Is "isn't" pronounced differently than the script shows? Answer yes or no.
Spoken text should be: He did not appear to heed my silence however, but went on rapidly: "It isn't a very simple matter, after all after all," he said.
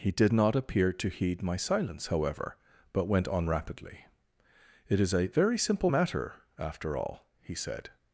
yes